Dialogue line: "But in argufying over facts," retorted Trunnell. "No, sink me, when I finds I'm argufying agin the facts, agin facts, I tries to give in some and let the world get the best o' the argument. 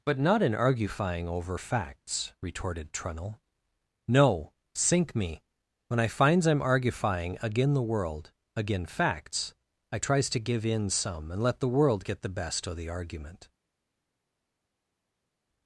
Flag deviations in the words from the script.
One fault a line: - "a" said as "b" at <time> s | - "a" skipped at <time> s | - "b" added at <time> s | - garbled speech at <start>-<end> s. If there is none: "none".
- "not" added at 0.2 s
- "facts" said as "world" at 7.8 s